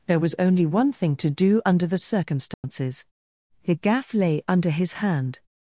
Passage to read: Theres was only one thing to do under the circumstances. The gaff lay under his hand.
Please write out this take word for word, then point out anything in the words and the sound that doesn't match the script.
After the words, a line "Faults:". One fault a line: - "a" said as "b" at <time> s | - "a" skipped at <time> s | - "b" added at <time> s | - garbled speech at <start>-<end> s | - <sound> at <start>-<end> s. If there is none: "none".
There was only one thing to do under the circumstances. The gaff lay under his hand.
Faults:
- "Theres" said as "There" at 0.1 s
- dropout at 2.5-2.6 s